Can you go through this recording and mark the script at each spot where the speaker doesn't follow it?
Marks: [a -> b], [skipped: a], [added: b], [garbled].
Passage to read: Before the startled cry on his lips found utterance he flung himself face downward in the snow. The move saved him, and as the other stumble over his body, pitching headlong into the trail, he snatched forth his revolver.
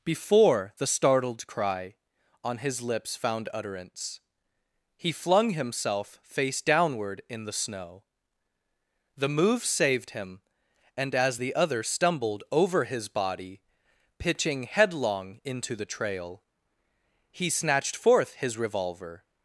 Before the startled cry on his lips found utterance he flung himself face downward in the snow. The move saved him, and as the other [stumble -> stumbled] over his body, pitching headlong into the trail, he snatched forth his revolver.